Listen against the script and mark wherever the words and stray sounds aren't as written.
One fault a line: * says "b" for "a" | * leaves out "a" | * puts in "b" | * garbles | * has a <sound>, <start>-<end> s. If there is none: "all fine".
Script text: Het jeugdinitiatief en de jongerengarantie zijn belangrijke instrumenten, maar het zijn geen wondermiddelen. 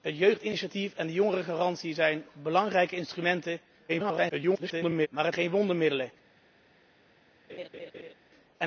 * garbles
* leaves out "zijn"
* has a laugh, 7.5-8.1 s